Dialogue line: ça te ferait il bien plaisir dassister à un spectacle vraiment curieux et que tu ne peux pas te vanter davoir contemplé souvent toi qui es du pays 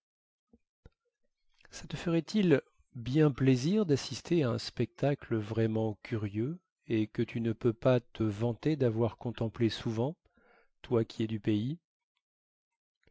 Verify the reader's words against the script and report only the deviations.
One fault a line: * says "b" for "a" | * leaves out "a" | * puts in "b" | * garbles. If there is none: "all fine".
all fine